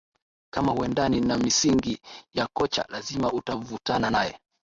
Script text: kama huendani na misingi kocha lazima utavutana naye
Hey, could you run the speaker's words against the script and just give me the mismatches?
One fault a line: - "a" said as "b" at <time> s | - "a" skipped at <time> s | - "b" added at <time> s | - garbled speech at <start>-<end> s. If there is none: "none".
- "ya" added at 2.3 s